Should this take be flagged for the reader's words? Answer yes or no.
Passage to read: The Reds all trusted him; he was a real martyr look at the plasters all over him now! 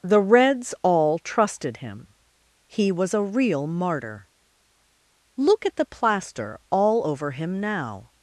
yes